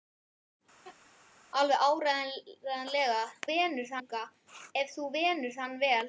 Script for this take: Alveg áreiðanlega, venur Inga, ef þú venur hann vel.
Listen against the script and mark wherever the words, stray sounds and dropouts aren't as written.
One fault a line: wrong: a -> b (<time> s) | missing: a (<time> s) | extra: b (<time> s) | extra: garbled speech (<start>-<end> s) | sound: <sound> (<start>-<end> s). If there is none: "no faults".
sound: laugh (0.8-1.1 s)